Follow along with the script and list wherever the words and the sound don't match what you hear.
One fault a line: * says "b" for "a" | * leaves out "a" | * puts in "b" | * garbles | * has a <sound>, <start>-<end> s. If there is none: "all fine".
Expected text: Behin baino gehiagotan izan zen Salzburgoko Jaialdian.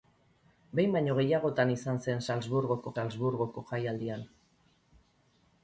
* puts in "Salzburgoko"